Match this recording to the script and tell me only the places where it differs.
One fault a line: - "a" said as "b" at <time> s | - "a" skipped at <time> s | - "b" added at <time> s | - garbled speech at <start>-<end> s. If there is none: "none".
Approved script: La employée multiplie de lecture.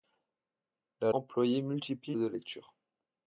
none